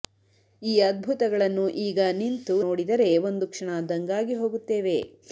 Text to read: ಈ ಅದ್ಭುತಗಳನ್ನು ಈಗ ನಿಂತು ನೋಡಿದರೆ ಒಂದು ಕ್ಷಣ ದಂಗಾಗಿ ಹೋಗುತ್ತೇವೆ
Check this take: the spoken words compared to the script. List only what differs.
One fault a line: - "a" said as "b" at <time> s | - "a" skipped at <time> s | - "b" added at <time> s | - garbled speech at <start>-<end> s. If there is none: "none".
none